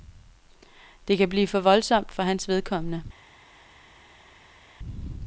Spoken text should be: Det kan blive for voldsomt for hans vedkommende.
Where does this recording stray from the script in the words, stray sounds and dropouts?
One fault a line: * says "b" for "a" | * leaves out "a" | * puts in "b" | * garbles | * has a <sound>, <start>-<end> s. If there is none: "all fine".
all fine